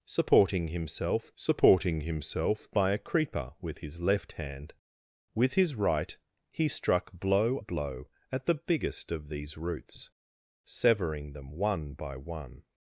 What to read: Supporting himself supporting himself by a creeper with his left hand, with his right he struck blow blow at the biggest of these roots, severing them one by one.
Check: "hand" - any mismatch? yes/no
no